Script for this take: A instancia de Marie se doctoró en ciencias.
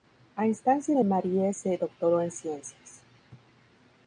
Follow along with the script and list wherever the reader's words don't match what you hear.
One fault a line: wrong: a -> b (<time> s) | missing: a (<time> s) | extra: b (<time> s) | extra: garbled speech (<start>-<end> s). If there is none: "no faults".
no faults